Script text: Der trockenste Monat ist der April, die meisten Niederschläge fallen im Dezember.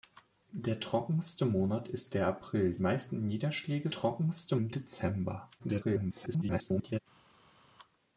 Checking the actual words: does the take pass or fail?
fail